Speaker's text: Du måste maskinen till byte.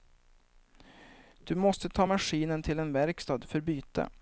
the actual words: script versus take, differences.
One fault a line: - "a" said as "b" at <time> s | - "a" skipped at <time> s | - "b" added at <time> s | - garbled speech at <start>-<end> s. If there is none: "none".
- "ta" added at 1.9 s
- "en verkstad för" added at 2.8 s